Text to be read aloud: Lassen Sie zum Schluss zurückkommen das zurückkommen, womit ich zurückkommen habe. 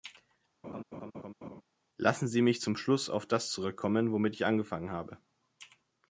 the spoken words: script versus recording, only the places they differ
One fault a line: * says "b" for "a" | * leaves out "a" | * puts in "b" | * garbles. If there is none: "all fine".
* puts in "mich"
* says "auf" for "zurückkommen"
* says "angefangen" for "zurückkommen"